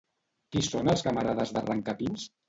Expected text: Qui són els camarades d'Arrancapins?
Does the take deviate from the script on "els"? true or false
false